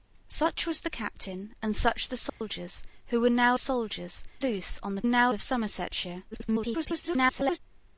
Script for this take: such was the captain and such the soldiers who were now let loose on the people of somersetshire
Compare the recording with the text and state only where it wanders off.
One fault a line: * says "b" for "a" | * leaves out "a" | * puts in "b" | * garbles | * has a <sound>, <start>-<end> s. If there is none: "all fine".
* has a dropout, 2.3-2.4 s
* says "soldiers" for "let"
* says "now" for "people"
* garbles